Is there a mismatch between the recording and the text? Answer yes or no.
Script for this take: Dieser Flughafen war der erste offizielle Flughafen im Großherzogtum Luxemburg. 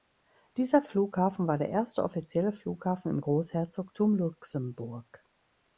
no